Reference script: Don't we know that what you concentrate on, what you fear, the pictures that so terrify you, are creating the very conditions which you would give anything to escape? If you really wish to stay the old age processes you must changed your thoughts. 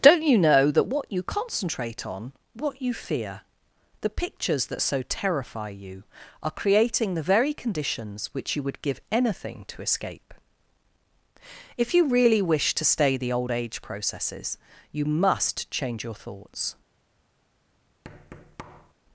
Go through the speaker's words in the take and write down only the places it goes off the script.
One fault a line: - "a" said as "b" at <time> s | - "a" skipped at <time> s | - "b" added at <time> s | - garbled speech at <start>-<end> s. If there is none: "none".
- "we" said as "you" at 0.2 s
- "changed" said as "change" at 15.7 s